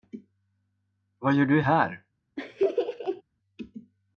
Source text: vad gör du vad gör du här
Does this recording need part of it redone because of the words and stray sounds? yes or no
yes